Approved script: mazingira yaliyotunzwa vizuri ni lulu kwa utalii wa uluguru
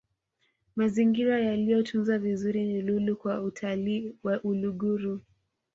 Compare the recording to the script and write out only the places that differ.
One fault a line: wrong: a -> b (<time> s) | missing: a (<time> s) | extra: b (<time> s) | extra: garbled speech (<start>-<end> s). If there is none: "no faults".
no faults